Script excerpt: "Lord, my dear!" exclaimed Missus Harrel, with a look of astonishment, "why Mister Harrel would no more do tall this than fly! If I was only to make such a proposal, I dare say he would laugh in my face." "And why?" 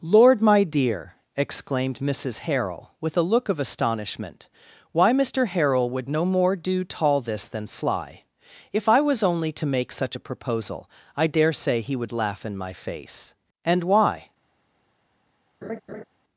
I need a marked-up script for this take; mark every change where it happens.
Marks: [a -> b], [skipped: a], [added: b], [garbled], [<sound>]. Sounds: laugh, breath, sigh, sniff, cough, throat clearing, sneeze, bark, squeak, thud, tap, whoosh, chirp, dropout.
"Lord, my dear!" exclaimed Missus Harrel, with a look of astonishment, "why Mister Harrel would no more do tall this than fly! If I was only to make such a proposal, I dare say he would laugh in my face." "And why?" [laugh]